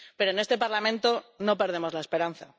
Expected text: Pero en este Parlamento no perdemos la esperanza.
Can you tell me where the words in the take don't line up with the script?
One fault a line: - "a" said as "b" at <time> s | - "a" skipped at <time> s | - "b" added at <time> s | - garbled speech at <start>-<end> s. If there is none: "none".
none